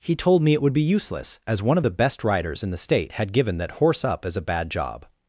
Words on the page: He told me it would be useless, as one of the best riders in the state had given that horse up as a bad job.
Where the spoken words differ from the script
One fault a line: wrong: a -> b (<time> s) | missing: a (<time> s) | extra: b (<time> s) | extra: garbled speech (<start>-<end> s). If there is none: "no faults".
no faults